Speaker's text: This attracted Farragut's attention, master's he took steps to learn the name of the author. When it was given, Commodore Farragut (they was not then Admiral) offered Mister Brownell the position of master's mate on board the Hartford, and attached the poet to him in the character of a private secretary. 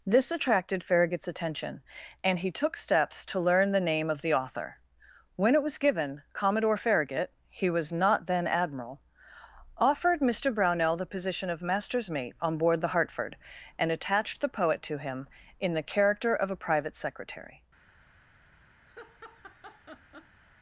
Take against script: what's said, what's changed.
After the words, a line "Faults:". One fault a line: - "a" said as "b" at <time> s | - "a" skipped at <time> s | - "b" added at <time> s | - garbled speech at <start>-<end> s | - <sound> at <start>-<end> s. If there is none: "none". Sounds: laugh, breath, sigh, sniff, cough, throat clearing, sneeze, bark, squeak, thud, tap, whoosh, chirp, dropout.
This attracted Farragut's attention, and he took steps to learn the name of the author. When it was given, Commodore Farragut (he was not then Admiral) offered Mister Brownell the position of master's mate on board the Hartford, and attached the poet to him in the character of a private secretary.
Faults:
- "master's" said as "and" at 2.2 s
- "they" said as "he" at 7.5 s
- laugh at 18.9-20.4 s